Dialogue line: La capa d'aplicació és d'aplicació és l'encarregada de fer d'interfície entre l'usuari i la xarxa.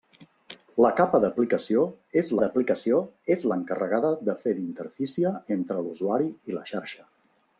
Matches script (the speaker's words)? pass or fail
pass